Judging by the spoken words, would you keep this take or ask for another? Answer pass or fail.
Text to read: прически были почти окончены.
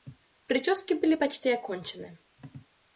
pass